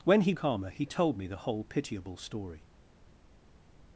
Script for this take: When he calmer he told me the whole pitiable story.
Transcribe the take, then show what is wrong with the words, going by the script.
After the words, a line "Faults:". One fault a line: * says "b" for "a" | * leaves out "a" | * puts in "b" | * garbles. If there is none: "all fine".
When he calmer he told me the whole pitiable story.
Faults:
all fine